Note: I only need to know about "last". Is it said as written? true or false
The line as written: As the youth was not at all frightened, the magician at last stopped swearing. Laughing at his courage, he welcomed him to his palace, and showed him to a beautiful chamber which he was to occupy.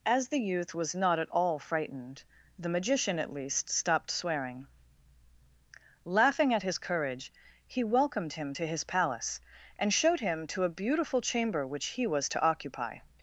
false